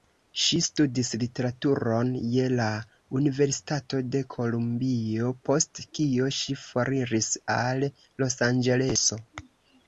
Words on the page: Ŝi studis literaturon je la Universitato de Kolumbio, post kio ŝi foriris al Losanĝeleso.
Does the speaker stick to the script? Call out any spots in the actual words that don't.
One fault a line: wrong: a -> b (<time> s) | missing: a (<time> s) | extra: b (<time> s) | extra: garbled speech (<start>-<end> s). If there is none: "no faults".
no faults